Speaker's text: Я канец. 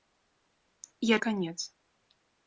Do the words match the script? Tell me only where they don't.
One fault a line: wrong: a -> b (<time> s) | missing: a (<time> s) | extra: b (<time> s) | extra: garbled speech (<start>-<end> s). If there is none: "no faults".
no faults